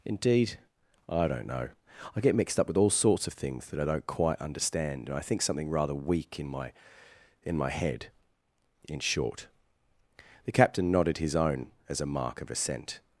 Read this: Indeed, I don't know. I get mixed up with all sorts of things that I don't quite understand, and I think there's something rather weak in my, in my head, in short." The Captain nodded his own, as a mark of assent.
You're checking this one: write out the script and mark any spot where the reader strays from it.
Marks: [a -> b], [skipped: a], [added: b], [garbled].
Indeed, I don't know. I get mixed up with all sorts of things that I don't quite understand, and I think [skipped: there's] something rather weak in my, in my head, in short." The Captain nodded his own, as a mark of assent.